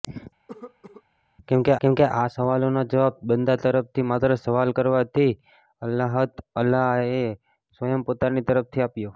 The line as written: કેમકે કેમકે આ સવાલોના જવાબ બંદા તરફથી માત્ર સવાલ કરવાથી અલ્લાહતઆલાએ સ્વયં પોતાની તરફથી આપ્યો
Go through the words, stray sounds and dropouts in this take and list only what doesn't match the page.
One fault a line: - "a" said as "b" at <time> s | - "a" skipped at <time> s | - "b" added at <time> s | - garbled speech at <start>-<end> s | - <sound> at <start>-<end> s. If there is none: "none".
- cough at 0.5-1.0 s